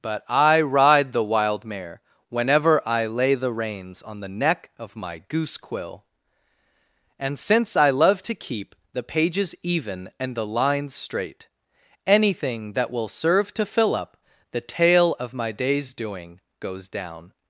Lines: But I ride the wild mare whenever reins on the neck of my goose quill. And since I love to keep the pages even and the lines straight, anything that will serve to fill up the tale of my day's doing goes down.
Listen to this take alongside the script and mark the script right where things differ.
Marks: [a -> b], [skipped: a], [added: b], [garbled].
But I ride the wild mare whenever [added: I lay the] reins on the neck of my goose quill. And since I love to keep the pages even and the lines straight, anything that will serve to fill up the tale of my day's doing goes down.